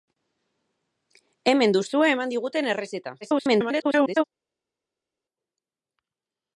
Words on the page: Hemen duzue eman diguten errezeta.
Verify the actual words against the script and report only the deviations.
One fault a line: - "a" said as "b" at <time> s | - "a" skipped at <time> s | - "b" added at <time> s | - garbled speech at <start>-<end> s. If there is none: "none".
- garbled speech at 3.2-4.2 s